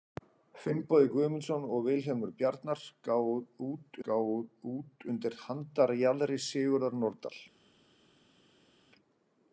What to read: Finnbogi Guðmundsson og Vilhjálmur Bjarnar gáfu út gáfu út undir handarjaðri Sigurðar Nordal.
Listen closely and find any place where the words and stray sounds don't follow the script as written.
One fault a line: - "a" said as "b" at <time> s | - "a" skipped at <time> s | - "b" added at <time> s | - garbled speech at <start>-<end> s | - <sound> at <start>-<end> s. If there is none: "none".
none